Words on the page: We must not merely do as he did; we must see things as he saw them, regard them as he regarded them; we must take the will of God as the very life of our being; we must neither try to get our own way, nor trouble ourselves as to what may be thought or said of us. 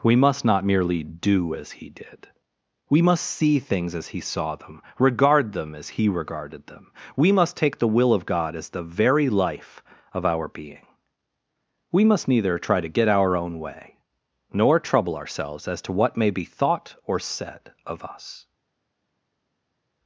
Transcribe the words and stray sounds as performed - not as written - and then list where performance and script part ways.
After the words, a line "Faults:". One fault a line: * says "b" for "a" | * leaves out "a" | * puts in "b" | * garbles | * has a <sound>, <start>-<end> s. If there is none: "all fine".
We must not merely do as he did; we must see things as he saw them, regard them as he regarded them; we must take the will of God as the very life of our being; we must neither try to get our own way, nor trouble ourselves as to what may be thought or said of us.
Faults:
all fine